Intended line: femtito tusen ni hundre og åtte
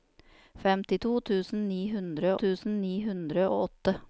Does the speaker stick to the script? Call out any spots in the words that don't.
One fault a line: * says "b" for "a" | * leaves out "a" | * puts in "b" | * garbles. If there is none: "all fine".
* puts in "tusen ni hundre"